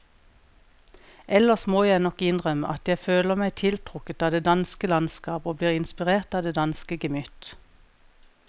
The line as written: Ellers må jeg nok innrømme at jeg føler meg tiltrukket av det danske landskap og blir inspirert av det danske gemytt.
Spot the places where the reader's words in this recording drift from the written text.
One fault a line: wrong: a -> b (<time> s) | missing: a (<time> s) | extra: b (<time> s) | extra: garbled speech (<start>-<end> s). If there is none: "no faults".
no faults